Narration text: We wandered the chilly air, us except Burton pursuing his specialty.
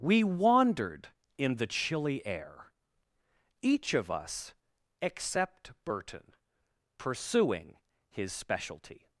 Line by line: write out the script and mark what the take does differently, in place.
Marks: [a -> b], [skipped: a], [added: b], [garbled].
We wandered [added: in] the chilly air, [added: each of] us except Burton pursuing his specialty.